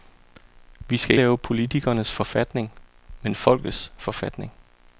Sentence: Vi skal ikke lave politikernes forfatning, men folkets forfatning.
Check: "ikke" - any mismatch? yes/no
yes